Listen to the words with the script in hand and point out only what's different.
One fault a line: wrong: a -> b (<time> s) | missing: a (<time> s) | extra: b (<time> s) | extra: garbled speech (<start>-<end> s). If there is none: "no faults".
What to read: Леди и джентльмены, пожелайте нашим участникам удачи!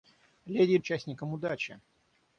missing: джентльмены пожелайте нашим (0.8 s)